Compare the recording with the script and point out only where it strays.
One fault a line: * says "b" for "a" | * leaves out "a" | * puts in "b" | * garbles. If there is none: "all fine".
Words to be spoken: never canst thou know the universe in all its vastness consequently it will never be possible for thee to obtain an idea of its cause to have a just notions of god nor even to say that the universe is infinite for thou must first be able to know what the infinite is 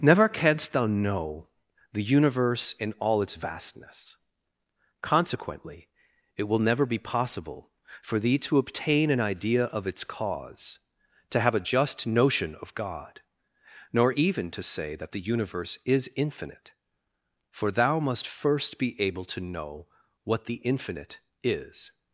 * says "notion" for "notions"